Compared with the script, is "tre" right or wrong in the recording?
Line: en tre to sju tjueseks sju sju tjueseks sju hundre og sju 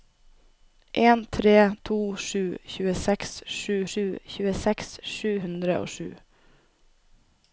right